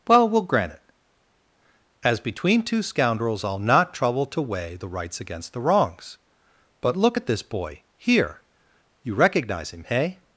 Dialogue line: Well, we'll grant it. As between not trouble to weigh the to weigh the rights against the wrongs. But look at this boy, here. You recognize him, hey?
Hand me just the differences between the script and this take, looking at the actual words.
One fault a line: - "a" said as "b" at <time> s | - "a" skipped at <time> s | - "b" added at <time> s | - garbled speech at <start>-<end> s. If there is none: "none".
- "not trouble to weigh the" said as "two scoundrels I'll not trouble" at 2.6 s